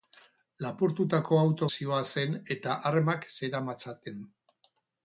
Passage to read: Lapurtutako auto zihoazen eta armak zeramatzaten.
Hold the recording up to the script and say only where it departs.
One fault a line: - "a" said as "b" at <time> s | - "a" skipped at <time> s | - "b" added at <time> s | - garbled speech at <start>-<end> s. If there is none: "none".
none